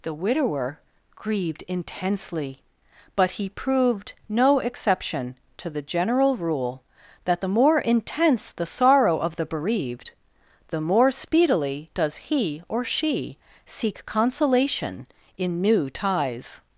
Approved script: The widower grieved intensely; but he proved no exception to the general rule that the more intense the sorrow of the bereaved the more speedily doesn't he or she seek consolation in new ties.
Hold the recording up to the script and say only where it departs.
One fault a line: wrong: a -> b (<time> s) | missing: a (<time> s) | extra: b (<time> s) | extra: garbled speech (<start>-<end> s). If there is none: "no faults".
wrong: doesn't -> does (11.9 s)